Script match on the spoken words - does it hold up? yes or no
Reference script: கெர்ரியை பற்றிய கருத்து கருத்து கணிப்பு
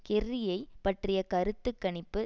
no